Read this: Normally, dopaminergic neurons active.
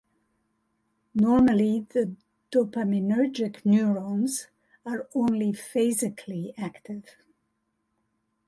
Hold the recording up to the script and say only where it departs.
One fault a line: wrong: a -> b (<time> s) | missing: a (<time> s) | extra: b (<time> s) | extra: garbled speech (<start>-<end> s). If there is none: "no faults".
extra: the (1.8 s)
extra: are only phasically (4.8 s)